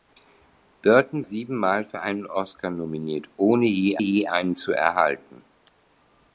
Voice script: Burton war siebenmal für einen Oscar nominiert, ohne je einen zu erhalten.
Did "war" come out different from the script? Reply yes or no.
yes